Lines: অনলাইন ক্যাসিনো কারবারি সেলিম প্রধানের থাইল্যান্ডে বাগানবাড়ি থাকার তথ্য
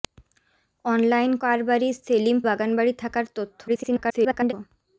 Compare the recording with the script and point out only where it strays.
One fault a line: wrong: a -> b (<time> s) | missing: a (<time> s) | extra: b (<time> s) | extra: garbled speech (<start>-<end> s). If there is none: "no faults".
missing: ক্যাসিনো (1.3 s)
missing: প্রধানের থাইল্যান্ডে (2.4 s)
extra: garbled speech (3.7-4.5 s)